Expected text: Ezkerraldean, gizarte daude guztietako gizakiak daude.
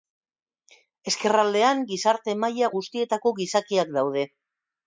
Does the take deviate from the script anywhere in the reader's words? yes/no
yes